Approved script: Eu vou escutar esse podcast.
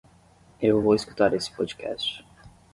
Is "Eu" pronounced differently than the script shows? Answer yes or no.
no